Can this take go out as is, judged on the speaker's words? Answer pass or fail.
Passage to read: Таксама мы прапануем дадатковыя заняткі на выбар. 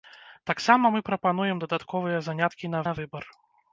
fail